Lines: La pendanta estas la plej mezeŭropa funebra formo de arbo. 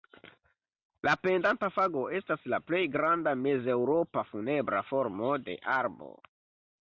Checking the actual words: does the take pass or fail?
fail